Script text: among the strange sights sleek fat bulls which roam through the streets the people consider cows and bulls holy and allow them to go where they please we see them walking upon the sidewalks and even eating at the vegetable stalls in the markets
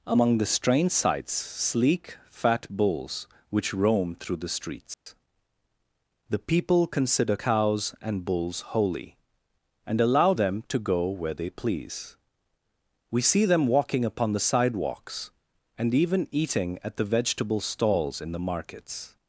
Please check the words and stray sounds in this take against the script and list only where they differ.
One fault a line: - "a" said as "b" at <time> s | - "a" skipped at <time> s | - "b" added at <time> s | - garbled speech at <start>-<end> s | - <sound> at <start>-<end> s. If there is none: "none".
- dropout at 4.9-5.1 s